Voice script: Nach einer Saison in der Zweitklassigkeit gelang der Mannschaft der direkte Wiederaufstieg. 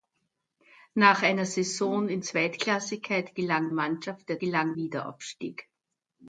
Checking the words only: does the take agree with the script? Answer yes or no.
no